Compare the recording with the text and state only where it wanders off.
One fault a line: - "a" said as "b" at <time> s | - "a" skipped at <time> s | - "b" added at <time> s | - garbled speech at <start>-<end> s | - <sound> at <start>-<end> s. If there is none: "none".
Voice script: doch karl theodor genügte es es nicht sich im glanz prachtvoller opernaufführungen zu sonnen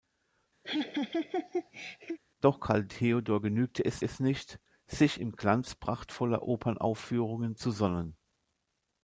- laugh at 0.6-2.2 s